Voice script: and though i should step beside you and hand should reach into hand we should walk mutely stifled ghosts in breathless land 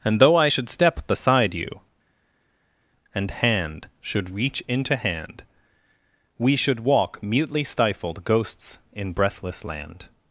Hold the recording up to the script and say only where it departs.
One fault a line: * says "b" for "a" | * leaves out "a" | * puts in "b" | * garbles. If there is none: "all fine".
all fine